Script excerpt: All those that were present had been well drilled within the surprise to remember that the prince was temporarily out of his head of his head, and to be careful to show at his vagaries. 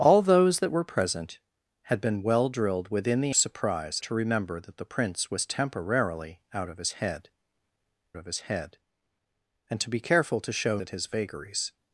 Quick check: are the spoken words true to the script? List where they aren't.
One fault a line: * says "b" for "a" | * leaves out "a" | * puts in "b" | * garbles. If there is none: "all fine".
all fine